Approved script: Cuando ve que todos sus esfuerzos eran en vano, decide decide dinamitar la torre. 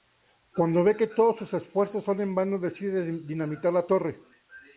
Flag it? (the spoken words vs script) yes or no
yes